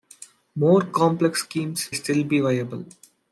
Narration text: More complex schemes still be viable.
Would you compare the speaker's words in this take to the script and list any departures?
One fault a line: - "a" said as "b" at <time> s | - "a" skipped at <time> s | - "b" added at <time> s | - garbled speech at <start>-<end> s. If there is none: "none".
none